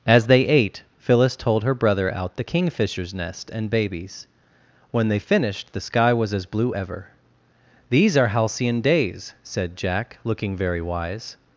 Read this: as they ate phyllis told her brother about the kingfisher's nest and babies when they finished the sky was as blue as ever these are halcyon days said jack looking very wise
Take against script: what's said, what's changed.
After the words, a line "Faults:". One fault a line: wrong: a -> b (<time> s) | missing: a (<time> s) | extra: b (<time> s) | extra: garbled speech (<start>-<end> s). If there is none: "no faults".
as they ate phyllis told her brother out the kingfisher's nest and babies when they finished the sky was as blue ever these are halcyon days said jack looking very wise
Faults:
wrong: about -> out (2.1 s)
missing: as (6.8 s)